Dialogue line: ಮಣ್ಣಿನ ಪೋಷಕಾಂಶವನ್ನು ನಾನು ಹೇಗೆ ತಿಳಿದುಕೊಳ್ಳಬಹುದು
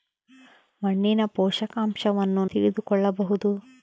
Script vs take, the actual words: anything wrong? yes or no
yes